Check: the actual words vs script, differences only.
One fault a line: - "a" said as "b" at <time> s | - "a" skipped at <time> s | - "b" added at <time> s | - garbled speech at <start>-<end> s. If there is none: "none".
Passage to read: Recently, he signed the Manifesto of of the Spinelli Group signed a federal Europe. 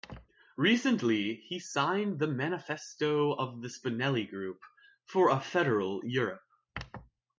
- "of" skipped at 3.6 s
- "signed" said as "for" at 5.0 s